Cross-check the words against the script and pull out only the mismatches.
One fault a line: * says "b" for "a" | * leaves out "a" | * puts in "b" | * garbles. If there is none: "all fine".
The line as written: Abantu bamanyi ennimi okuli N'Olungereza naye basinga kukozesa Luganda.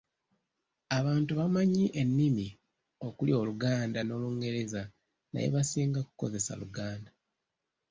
* puts in "Oluganda"